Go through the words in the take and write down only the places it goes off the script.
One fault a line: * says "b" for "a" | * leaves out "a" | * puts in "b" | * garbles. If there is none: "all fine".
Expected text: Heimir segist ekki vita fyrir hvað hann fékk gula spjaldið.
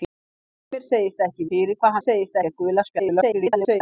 * leaves out "vita"
* says "segist" for "hann"
* garbles